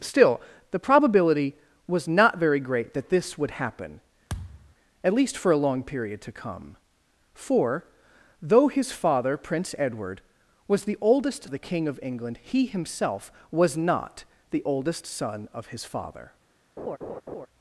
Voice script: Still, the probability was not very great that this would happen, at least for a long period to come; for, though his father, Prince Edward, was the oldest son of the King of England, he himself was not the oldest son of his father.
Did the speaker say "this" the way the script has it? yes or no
yes